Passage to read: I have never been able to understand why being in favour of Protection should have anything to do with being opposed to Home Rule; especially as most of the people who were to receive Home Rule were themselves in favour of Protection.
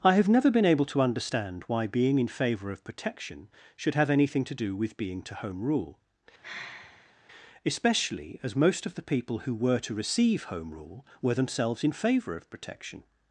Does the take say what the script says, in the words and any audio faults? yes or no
no